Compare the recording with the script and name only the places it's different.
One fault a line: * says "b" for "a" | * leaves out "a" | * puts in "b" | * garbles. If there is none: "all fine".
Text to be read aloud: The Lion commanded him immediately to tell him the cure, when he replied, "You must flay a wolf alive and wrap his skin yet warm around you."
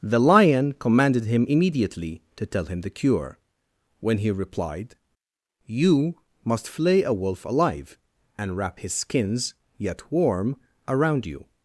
* says "skins" for "skin"